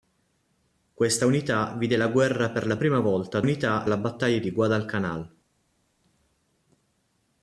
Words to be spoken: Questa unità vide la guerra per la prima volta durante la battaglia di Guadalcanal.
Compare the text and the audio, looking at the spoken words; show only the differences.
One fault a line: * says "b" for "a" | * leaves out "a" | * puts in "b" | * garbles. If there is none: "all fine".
* says "unità" for "durante"